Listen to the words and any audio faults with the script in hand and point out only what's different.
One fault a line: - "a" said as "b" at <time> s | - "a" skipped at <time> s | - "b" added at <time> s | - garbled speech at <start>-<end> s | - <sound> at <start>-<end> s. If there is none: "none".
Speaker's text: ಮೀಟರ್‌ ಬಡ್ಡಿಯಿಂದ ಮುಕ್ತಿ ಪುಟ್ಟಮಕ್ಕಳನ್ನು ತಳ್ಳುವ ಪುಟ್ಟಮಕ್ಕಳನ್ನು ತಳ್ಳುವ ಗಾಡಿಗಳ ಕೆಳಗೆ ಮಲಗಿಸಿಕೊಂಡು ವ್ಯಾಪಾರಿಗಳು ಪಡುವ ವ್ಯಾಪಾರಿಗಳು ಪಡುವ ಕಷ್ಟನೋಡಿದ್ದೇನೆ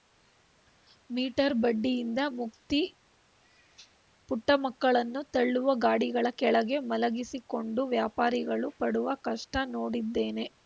- "ಪುಟ್ಟಮಕ್ಕಳನ್ನು ತಳ್ಳುವ" skipped at 5.7 s
- "ವ್ಯಾಪಾರಿಗಳು ಪಡುವ" skipped at 9.1 s